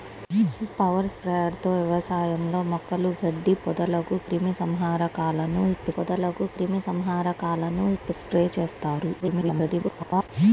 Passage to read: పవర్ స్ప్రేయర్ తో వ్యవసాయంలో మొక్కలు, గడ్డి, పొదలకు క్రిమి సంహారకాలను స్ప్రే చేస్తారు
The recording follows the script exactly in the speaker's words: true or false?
false